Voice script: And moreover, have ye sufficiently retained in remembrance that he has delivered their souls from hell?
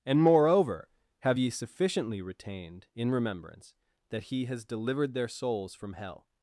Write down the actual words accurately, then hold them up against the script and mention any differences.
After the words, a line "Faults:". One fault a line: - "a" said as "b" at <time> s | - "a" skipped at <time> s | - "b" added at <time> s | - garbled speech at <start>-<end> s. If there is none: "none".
And moreover, have ye sufficiently retained in remembrance that he has delivered their souls from hell?
Faults:
none